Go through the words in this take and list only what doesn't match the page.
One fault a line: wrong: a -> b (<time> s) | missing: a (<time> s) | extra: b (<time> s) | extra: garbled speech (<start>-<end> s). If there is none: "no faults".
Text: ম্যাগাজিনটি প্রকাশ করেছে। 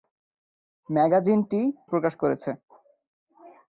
no faults